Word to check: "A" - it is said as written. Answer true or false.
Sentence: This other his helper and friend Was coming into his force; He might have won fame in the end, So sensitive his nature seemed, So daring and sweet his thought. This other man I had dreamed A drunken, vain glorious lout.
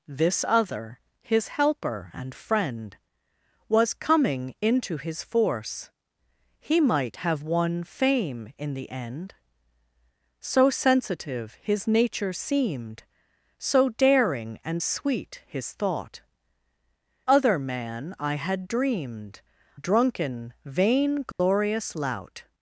false